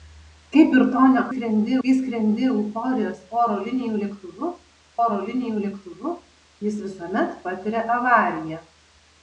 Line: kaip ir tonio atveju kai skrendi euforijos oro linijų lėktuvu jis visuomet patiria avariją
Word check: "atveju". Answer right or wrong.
wrong